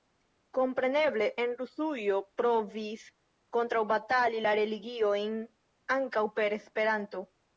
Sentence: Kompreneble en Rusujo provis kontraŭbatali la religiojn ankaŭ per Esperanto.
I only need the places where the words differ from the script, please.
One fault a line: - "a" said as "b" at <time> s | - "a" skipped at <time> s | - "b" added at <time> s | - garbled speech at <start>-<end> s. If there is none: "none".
none